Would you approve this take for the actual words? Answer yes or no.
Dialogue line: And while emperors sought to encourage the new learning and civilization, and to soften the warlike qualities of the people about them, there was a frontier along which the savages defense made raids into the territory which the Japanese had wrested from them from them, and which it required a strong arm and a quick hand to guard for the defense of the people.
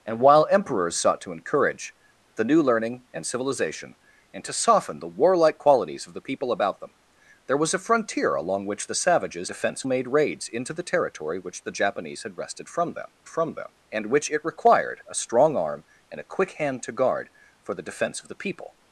yes